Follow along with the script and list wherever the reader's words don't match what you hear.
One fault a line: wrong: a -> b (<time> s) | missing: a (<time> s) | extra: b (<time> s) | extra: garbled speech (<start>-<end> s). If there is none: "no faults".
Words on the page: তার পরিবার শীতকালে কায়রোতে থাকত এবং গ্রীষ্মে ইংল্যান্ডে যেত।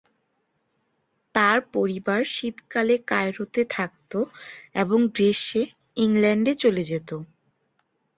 extra: চলে (6.5 s)